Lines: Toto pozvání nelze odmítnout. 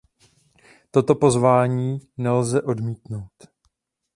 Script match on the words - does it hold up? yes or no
yes